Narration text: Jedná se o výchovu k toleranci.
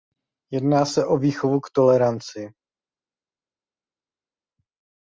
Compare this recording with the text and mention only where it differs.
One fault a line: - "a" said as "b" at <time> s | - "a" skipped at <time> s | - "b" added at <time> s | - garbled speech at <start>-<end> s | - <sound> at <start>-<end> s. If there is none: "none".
none